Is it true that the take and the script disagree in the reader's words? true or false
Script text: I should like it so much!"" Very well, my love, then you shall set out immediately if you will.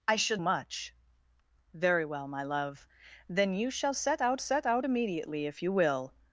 true